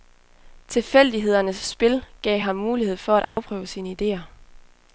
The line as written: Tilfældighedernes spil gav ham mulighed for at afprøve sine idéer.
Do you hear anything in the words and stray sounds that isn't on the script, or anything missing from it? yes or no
yes